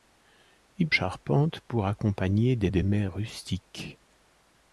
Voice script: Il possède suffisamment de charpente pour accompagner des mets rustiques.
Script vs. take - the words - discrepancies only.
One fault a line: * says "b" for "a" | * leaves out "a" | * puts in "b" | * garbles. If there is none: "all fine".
* leaves out "possède suffisamment de"
* puts in "des"